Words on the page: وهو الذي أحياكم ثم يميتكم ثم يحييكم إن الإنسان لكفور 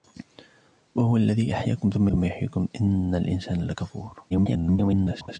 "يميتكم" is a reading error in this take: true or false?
true